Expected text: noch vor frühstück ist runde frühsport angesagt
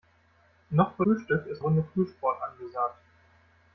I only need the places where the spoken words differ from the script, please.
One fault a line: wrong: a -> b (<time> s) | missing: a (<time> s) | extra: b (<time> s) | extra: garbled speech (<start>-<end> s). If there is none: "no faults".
no faults